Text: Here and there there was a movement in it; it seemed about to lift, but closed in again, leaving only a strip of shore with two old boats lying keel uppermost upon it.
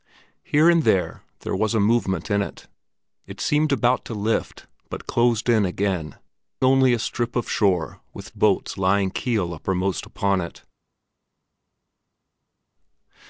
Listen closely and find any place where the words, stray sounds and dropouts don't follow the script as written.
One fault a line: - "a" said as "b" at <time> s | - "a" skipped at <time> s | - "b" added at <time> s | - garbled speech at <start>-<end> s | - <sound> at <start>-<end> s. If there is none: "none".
- "leaving" skipped at 6.1 s
- "two old" skipped at 8.3 s